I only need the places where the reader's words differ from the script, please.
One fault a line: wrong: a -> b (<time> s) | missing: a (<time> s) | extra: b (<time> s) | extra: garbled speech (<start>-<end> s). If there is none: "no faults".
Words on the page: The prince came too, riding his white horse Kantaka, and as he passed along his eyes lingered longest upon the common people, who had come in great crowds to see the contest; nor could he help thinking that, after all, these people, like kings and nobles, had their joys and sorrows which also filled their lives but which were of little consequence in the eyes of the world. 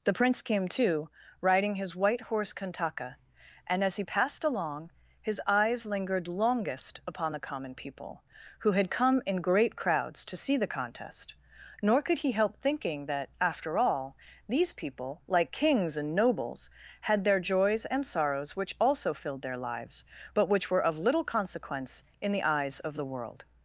no faults